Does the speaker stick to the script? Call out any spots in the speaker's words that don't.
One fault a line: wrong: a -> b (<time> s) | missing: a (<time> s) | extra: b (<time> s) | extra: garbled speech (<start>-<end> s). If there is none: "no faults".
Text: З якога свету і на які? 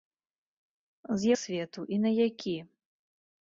missing: якога (1.3 s)